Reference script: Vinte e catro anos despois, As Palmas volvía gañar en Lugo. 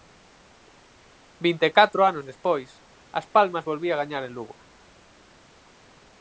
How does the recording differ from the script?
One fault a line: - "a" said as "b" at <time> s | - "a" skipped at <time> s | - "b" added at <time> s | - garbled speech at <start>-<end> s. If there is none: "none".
none